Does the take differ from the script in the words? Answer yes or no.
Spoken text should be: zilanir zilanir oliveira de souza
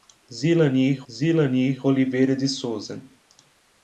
no